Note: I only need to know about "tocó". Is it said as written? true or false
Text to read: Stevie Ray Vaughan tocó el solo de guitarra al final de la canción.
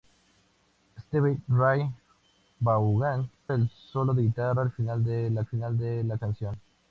false